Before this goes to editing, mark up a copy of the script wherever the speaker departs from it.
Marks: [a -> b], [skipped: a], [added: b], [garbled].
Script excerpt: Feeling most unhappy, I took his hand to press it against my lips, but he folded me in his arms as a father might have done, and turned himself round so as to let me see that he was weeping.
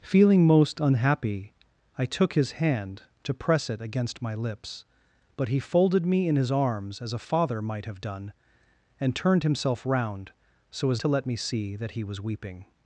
Feeling most unhappy, I took his hand to press it against my lips, but he folded me in his arms as a father might have done, and turned himself round so as to let me see that he was weeping.